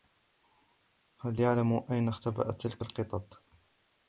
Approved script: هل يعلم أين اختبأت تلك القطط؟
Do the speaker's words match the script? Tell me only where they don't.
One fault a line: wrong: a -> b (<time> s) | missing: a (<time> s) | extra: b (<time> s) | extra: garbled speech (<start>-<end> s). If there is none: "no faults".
no faults